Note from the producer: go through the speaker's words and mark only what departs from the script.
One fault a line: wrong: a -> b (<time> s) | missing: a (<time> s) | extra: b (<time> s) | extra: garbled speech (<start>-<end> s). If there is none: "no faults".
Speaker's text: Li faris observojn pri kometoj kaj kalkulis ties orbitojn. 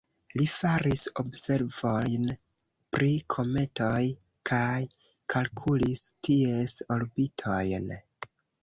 no faults